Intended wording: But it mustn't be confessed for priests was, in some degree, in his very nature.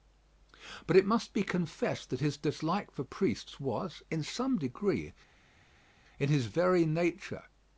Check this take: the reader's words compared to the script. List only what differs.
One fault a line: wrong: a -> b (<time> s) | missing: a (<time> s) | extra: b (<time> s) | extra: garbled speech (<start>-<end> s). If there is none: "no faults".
wrong: mustn't -> must (1.1 s)
extra: that his dislike (2.1 s)